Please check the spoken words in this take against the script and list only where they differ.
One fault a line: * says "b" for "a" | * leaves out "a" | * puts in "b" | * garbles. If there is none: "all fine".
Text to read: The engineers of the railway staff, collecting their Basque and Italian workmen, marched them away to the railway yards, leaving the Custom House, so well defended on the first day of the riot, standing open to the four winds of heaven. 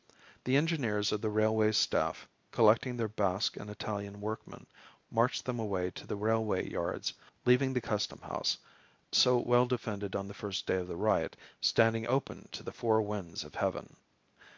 all fine